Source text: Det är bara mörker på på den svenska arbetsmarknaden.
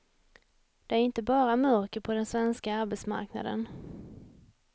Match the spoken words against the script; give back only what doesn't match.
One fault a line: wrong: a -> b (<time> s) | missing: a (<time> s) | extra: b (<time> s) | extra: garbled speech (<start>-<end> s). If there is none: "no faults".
extra: inte (1.0 s)
missing: på (2.1 s)